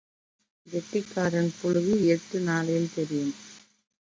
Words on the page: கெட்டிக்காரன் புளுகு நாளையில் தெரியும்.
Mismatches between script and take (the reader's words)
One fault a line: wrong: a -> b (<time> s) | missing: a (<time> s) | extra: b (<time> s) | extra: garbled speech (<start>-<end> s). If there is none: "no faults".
extra: எட்டு (2.1 s)